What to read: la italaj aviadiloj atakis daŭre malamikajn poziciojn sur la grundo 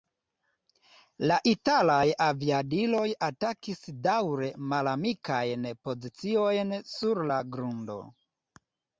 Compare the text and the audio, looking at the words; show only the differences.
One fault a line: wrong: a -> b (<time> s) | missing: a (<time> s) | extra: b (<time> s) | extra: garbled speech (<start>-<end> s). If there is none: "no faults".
no faults